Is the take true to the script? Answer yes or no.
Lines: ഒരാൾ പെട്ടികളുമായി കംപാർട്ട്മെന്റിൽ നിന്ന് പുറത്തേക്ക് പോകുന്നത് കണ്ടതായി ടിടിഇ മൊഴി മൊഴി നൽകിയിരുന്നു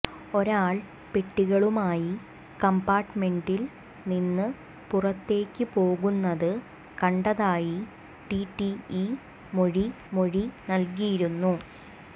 yes